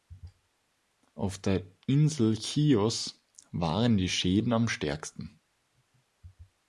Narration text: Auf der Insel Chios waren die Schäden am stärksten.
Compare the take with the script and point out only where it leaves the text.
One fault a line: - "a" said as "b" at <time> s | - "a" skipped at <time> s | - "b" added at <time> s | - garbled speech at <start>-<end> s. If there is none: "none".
none